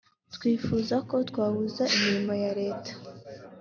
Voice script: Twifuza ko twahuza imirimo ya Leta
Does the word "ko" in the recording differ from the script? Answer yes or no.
no